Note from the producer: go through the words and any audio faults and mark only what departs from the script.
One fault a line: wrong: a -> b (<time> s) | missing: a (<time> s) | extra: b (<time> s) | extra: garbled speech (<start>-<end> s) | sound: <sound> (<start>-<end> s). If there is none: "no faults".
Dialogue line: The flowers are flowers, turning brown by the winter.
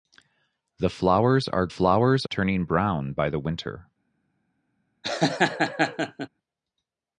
sound: laugh (5.0-6.3 s)